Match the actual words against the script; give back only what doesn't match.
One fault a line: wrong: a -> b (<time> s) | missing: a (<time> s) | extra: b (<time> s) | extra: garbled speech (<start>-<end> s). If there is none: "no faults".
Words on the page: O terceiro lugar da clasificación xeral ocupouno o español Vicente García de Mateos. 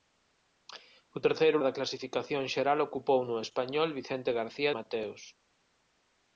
missing: lugar (1.6 s)
missing: de (4.7 s)